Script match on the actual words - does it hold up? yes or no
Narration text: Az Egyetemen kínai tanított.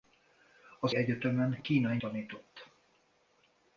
yes